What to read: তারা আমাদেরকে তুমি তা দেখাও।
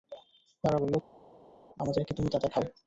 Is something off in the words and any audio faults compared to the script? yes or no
yes